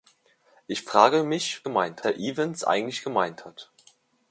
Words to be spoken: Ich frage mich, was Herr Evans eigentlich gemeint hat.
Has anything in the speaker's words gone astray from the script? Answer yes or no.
yes